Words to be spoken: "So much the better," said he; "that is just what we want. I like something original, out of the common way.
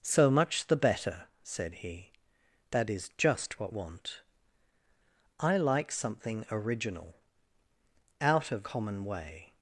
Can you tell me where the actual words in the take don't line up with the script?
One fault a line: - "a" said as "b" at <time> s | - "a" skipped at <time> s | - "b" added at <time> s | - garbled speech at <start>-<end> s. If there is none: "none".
- "we" skipped at 3.8 s
- "the" skipped at 8.6 s